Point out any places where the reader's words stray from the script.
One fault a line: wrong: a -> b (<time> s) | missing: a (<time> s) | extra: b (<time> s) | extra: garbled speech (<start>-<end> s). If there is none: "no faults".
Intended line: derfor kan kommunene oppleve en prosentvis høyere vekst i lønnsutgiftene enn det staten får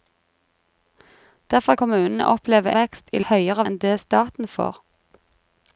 missing: kan (1.8 s)
missing: en prosentvis høyere (2.7 s)
wrong: lønnsutgiftene -> høyere (3.3 s)